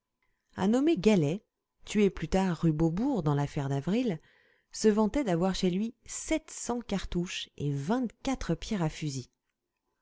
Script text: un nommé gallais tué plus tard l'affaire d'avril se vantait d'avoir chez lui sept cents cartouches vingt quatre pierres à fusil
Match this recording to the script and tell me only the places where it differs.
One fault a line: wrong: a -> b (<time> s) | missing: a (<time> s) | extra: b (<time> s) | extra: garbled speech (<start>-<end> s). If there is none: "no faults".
extra: rue beaubourg dans (2.6 s)
extra: et (7.6 s)